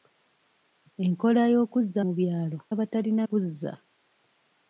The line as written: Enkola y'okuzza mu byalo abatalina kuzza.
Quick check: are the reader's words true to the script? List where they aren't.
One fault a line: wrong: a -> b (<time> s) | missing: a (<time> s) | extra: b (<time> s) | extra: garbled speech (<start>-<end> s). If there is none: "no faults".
no faults